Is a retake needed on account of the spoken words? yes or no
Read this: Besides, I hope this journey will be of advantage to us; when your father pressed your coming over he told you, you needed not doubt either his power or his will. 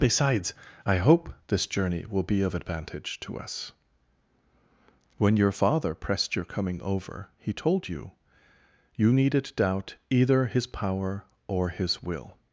yes